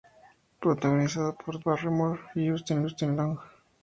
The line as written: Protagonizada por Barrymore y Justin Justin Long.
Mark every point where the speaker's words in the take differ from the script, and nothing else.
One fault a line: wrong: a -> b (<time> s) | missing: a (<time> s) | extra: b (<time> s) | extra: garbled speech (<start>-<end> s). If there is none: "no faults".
no faults